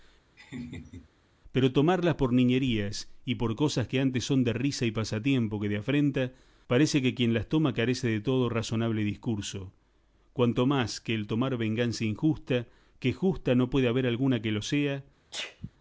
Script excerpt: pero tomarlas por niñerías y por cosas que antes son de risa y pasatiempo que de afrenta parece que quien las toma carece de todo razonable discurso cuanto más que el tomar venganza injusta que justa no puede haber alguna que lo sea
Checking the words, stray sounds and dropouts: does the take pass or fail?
fail